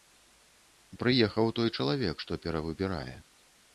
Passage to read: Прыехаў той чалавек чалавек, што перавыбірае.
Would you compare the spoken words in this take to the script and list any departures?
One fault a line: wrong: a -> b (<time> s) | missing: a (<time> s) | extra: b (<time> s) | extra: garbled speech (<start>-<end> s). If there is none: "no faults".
missing: чалавек (2.2 s)